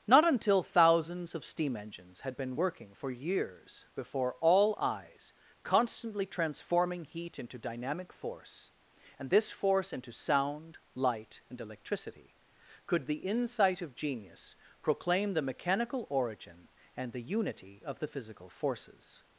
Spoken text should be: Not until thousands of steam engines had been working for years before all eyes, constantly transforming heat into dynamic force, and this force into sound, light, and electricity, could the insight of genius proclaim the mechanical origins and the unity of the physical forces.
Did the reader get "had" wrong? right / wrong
right